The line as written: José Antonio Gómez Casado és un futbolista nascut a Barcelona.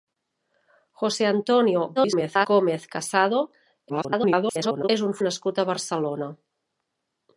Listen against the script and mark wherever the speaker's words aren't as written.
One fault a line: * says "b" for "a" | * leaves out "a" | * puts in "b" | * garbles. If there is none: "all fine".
* garbles
* garbles
* leaves out "futbolista"